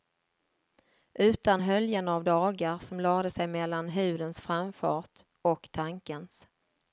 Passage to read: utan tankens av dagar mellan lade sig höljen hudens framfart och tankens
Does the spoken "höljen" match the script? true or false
false